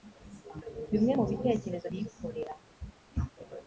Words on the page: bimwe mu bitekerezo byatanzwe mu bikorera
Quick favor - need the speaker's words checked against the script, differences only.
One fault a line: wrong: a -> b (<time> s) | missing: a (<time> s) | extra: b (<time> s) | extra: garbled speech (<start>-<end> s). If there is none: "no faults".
missing: byatanzwe mu (1.9 s)